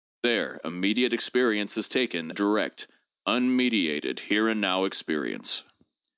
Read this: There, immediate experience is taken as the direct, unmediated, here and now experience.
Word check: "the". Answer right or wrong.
wrong